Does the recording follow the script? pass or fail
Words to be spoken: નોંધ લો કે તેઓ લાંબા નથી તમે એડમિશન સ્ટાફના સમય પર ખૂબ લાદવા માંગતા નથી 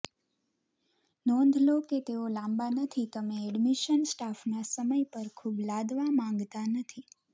pass